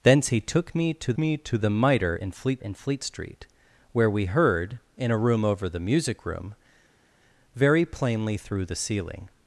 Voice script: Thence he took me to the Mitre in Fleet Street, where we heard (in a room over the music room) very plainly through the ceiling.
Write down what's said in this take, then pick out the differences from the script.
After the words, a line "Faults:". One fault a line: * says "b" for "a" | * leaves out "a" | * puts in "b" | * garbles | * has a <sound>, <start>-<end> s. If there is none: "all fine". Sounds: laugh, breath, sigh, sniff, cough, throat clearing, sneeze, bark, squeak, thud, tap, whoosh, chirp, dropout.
Thence he took me to me to the Mitre in Fleet in Fleet Street, where we heard (in a room over the music room) very plainly through the ceiling.
Faults:
* puts in "me to"
* puts in "in Fleet"